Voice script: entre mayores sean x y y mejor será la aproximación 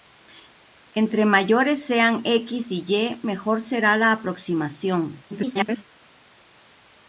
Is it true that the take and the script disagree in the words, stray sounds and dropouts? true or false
true